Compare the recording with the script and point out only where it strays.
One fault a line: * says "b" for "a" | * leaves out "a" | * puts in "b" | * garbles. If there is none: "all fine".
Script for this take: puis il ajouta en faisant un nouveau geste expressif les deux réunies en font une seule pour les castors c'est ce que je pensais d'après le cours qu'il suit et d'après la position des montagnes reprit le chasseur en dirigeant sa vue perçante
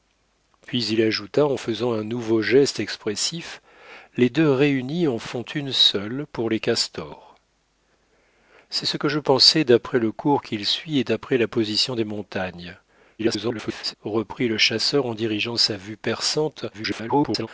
* garbles
* garbles